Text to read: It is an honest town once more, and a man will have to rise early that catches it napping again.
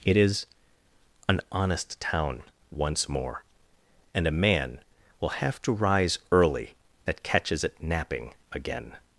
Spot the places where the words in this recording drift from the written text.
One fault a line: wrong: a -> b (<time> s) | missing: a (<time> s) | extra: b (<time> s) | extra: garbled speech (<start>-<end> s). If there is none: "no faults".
no faults